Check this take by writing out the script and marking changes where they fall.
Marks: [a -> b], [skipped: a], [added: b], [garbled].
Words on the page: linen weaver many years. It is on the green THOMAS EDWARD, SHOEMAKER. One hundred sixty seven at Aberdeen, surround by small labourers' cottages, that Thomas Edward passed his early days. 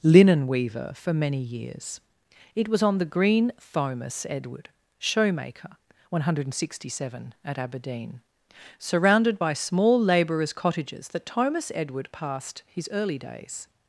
linen weaver [added: for] many years. It [is -> was] on the green THOMAS EDWARD, SHOEMAKER. One hundred sixty seven at Aberdeen, [surround -> surrounded] by small labourers' cottages, that Thomas Edward passed his early days.